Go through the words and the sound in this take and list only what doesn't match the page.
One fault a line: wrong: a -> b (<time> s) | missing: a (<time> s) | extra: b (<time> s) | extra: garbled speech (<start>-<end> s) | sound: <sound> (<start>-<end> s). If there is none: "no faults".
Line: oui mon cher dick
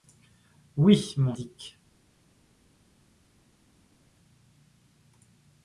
missing: cher (1.4 s)